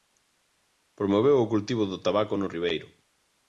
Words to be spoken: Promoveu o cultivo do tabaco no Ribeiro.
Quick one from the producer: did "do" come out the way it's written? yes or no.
yes